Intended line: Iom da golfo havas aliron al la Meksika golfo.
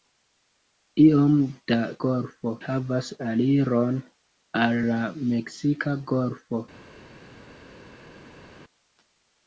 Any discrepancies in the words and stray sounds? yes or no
no